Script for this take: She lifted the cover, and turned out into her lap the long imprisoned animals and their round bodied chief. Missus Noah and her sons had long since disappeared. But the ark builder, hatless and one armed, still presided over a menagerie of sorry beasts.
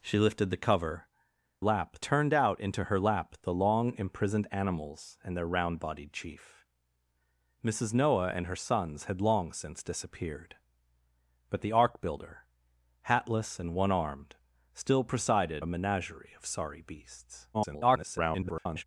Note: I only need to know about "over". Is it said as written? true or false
false